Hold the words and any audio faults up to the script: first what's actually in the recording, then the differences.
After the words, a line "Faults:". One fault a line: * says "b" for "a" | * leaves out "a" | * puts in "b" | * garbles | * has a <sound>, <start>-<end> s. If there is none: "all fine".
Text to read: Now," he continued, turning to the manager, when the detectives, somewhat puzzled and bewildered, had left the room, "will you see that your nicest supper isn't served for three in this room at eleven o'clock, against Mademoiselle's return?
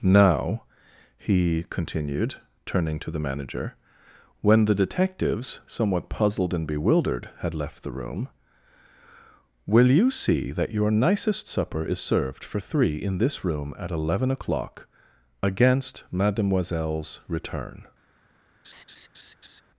Now," he continued, turning to the manager, when the detectives, somewhat puzzled and bewildered, had left the room, "will you see that your nicest supper is served for three in this room at eleven o'clock, against Mademoiselle's return?
Faults:
* says "is" for "isn't"
* has a laugh, 18.6-19.6 s